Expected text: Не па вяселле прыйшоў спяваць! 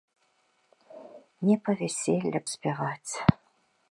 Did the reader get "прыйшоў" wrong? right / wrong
wrong